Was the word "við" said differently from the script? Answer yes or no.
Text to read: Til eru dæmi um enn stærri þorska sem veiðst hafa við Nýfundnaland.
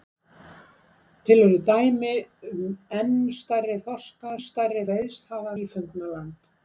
yes